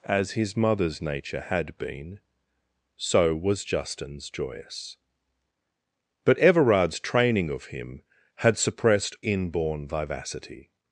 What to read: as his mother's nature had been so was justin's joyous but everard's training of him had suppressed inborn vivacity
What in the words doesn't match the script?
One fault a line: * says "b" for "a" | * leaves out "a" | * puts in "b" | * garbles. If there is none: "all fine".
all fine